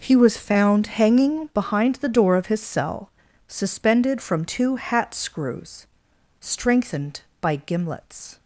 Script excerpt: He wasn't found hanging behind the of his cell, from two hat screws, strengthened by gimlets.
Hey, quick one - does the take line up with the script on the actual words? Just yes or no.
no